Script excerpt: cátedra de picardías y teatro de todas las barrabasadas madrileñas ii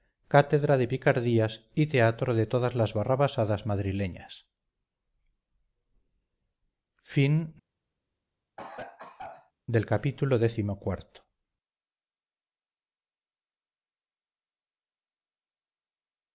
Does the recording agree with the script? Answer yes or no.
yes